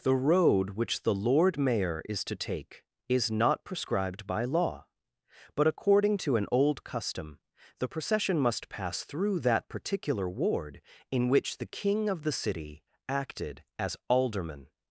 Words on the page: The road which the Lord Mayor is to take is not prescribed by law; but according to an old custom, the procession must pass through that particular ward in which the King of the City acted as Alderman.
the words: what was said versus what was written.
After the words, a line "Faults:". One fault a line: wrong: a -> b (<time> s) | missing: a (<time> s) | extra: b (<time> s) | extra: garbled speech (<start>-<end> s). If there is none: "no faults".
The road which the Lord Mayor is to take is not prescribed by law; but according to an old custom, the procession must pass through that particular ward in which the King of the City acted as Alderman.
Faults:
no faults